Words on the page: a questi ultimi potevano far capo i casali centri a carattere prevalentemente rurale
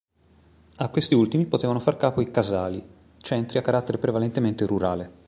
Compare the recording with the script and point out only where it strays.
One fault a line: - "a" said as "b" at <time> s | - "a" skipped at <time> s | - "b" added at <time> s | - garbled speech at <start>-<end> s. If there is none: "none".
none